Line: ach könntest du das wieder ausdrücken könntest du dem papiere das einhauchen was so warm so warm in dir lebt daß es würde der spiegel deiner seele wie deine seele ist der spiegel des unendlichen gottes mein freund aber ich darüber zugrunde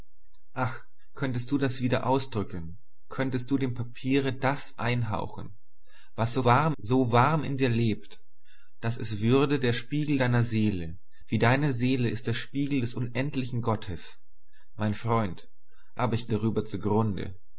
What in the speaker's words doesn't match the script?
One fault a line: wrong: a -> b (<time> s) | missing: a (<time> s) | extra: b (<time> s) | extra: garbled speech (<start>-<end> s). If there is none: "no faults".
no faults